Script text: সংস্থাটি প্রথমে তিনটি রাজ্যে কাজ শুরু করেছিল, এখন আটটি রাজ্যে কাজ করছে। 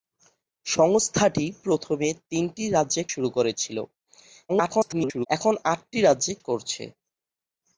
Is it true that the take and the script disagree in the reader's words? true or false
true